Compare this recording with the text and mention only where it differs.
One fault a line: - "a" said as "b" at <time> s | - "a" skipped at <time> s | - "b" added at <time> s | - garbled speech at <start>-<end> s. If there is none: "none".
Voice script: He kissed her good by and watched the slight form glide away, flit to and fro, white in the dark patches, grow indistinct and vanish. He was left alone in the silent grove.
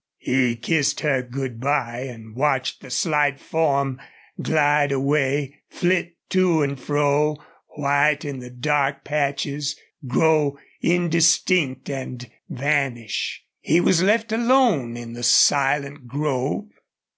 none